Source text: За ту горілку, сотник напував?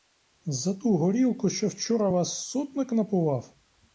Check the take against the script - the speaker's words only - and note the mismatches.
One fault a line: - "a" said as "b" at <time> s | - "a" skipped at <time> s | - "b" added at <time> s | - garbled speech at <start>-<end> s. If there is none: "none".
- "що вчора вас" added at 1.5 s